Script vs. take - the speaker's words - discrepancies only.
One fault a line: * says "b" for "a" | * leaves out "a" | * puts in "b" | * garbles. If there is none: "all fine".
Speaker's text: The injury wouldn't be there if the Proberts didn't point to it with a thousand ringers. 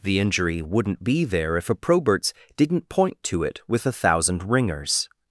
* says "a" for "the"